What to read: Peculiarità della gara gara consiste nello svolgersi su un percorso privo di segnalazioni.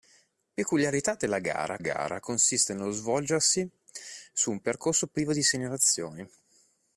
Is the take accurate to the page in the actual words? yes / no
yes